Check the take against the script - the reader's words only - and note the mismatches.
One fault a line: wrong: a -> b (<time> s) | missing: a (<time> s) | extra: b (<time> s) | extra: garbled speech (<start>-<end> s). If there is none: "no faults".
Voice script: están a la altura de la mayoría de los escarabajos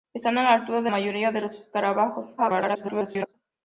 missing: la (0.9 s)
extra: garbled speech (2.4-3.3 s)